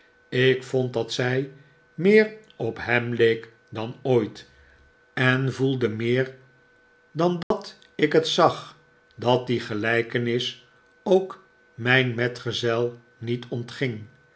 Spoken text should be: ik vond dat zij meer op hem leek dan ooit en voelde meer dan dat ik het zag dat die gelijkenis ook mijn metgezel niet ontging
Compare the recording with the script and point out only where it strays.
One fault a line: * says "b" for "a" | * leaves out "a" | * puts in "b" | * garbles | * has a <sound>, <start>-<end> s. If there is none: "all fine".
* has a dropout, 7.4-7.5 s